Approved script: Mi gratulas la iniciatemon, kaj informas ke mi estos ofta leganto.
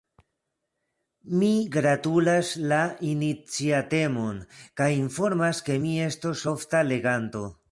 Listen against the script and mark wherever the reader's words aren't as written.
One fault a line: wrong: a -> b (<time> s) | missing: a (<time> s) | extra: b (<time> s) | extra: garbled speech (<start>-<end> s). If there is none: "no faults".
no faults